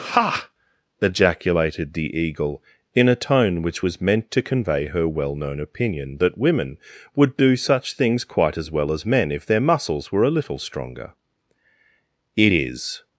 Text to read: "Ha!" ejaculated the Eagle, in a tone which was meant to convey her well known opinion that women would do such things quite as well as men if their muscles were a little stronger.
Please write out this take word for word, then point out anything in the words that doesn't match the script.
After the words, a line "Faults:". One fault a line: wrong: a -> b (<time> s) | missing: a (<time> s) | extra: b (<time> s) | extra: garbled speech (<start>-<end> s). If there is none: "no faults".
"Ha!" ejaculated the Eagle, in a tone which was meant to convey her well known opinion that women would do such things quite as well as men if their muscles were a little stronger. It is
Faults:
extra: It is (12.4 s)